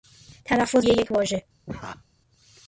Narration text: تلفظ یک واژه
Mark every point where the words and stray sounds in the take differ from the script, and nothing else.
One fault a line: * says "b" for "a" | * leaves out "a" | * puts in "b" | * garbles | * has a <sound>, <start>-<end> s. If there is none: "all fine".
* has a laugh, 1.7-2.0 s